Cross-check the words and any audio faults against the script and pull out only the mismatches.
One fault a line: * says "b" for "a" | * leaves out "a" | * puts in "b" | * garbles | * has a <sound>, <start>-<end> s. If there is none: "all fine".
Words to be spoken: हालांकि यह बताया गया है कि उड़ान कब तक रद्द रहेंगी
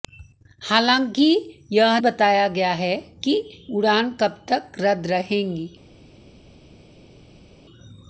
all fine